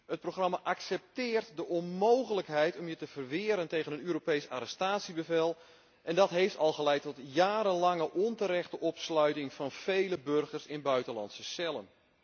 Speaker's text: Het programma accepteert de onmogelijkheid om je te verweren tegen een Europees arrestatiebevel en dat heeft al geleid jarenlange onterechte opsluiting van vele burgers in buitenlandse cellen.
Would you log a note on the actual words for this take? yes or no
yes